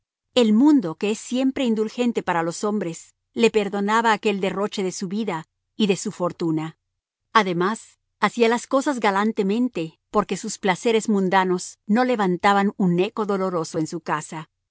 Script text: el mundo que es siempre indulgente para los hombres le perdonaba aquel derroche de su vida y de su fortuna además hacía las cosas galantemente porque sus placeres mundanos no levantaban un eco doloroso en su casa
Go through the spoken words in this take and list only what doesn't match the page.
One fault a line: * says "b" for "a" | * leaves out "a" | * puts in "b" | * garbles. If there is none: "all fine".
all fine